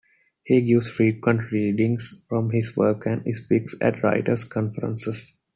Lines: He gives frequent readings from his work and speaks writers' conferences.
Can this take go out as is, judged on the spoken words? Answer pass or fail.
fail